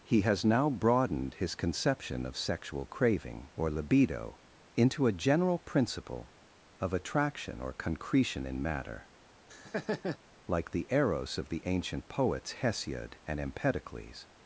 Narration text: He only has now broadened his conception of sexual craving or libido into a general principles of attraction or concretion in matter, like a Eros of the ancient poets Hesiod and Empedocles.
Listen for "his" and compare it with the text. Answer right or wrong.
right